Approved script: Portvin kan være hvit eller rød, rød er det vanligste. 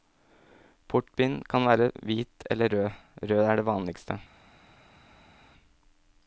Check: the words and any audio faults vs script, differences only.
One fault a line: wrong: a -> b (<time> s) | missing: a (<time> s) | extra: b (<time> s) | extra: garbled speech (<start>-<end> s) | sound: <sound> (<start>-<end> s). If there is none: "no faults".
no faults